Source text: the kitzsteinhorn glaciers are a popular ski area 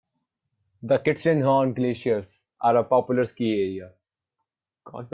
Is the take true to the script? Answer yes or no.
yes